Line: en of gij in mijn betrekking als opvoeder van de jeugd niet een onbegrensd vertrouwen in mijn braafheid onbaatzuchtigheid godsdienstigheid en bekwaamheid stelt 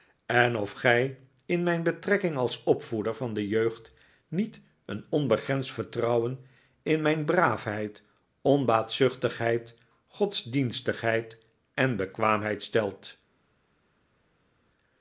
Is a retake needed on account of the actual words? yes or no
no